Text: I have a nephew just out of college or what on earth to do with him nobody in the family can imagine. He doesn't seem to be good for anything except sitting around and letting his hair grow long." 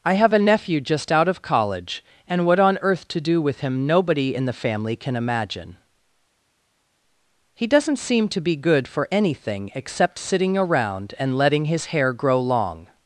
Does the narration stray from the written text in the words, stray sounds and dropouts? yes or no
yes